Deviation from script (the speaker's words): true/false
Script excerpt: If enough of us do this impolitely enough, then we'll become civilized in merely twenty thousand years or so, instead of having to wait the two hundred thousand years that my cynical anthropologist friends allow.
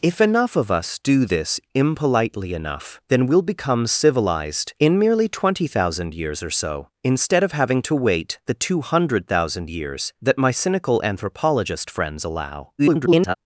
true